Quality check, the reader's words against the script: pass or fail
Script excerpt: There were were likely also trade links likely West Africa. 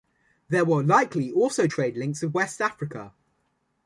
fail